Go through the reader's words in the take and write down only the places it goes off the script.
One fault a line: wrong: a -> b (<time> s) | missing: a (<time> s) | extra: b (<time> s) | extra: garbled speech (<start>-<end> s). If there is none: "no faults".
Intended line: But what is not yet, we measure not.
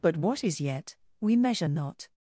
missing: not (0.6 s)